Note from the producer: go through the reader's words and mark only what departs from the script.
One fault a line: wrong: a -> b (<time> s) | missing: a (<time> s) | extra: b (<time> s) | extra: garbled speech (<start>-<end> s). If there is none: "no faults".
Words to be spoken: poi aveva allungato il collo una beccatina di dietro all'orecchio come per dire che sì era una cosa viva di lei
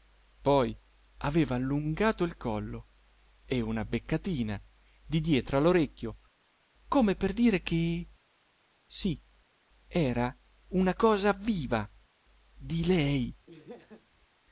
extra: e (3.5 s)